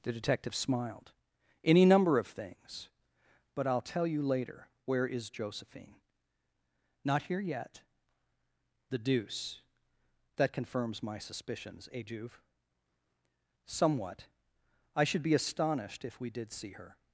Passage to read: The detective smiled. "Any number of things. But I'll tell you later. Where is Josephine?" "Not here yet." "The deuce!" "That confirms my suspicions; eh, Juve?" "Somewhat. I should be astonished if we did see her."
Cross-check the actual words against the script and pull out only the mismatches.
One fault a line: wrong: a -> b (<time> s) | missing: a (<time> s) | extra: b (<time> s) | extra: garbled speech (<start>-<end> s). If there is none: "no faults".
no faults